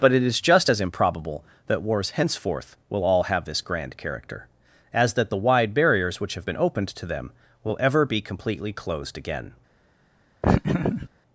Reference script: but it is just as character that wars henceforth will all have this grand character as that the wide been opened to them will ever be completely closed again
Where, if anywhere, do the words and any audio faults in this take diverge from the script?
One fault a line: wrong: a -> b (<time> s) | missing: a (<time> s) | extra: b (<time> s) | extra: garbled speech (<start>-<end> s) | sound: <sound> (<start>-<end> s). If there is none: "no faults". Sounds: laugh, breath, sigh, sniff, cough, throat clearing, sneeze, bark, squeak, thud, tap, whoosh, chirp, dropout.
wrong: character -> improbable (0.8 s)
extra: barriers which have (5.7 s)
sound: laugh (10.4-11.1 s)